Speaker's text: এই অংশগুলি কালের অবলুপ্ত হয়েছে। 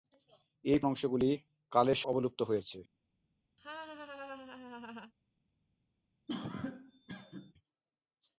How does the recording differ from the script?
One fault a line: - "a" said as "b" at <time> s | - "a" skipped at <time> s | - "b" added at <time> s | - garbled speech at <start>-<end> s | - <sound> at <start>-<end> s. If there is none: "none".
- laugh at 3.6-5.1 s
- cough at 6.3-7.5 s